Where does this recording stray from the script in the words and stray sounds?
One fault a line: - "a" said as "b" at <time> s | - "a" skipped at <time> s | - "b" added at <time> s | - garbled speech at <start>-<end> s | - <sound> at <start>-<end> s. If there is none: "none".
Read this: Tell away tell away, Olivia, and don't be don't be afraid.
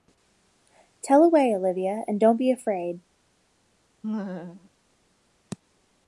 - "tell away" skipped at 1.5 s
- "don't be" skipped at 2.5 s
- laugh at 4.0-4.7 s